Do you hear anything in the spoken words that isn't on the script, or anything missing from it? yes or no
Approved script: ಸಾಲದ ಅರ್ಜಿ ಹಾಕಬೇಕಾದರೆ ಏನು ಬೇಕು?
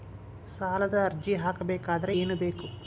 no